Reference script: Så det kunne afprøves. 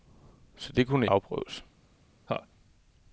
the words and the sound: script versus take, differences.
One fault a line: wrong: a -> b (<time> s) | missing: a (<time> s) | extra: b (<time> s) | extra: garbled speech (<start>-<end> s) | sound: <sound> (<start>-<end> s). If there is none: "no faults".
sound: laugh (2.3-2.5 s)